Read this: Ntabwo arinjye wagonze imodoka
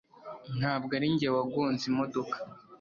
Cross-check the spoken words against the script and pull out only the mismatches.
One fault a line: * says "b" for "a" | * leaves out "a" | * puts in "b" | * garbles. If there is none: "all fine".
all fine